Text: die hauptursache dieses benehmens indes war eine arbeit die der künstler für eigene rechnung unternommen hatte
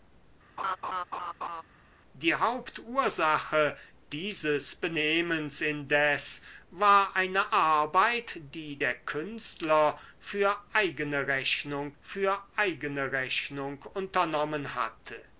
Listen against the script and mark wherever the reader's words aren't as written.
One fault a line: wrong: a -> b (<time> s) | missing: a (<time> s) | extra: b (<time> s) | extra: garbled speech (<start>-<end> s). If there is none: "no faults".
extra: für eigene rechnung (12.0 s)